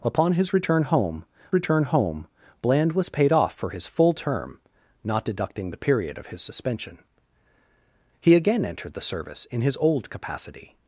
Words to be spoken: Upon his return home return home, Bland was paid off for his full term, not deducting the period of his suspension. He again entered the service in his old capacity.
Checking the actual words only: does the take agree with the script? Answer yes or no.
yes